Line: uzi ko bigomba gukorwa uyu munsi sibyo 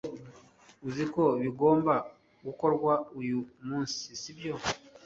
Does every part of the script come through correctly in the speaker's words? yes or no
yes